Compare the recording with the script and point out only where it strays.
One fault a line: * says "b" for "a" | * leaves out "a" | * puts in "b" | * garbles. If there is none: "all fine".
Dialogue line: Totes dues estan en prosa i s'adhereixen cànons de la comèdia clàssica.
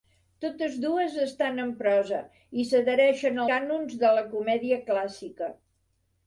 all fine